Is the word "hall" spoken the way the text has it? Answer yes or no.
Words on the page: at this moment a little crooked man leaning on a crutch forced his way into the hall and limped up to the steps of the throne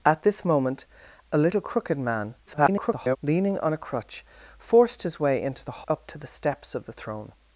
no